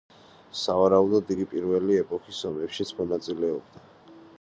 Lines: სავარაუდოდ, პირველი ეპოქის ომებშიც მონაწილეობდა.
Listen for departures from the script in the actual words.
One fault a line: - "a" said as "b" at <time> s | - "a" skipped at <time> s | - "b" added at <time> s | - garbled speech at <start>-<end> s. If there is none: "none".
- "იგი" added at 1.3 s